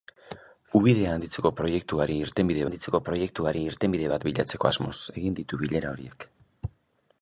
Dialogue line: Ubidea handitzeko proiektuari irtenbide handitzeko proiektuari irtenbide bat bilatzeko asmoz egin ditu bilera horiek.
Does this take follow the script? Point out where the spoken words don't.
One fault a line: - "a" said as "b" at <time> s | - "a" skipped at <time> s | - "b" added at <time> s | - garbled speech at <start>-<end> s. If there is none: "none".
none